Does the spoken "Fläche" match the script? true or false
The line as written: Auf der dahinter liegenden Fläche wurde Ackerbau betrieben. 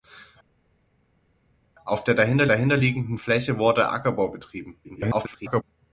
true